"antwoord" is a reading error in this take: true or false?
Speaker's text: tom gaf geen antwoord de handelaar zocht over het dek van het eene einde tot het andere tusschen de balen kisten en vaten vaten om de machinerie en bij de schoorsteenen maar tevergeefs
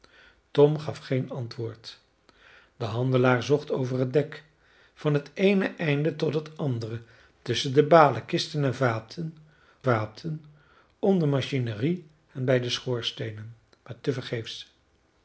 false